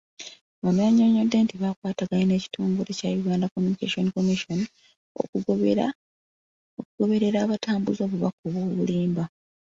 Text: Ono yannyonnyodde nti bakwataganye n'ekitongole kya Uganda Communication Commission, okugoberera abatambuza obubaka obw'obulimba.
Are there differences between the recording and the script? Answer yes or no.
no